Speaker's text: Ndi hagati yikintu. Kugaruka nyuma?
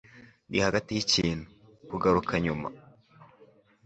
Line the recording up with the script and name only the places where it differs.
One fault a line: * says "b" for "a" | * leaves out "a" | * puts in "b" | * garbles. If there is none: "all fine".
all fine